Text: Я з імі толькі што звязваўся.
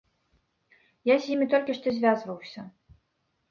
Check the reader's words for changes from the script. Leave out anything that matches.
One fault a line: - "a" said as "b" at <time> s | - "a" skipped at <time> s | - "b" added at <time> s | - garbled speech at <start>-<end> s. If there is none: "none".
none